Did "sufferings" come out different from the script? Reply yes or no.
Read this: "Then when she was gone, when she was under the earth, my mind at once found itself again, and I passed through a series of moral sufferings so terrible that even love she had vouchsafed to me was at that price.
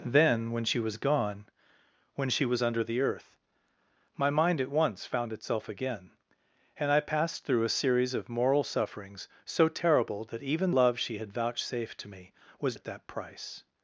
no